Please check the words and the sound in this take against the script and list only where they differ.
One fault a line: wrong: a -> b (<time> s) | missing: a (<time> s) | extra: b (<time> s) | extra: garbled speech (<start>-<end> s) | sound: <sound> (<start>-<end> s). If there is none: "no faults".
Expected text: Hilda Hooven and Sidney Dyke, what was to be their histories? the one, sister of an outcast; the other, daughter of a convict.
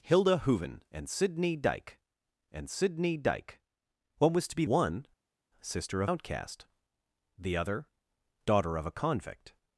extra: and Sidney Dyke (2.5 s)
missing: their histories the (4.6 s)
missing: an (6.1 s)